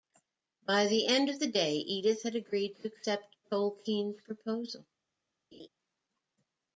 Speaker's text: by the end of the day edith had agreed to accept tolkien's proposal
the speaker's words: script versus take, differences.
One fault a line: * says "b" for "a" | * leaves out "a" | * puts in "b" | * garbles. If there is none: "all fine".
all fine